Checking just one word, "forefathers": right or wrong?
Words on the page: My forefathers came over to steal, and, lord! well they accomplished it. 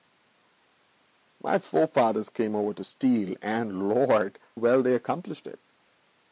right